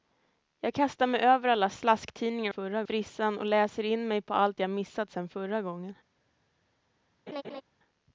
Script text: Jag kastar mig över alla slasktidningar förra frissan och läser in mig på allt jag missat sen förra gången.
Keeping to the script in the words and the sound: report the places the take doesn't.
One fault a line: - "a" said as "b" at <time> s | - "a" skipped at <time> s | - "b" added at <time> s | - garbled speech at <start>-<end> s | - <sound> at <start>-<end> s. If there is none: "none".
- laugh at 7.3-7.6 s